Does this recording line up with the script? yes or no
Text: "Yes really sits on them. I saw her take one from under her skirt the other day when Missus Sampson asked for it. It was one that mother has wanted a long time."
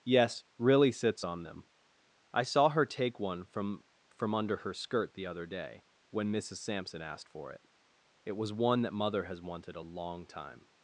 no